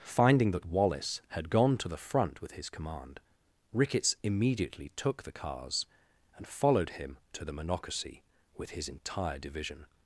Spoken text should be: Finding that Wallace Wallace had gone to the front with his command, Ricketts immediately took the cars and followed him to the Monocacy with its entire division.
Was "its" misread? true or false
true